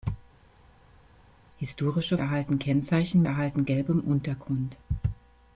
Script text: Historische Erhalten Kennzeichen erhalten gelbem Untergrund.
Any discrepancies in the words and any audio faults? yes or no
no